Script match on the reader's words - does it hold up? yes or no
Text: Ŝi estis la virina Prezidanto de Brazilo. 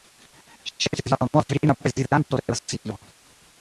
no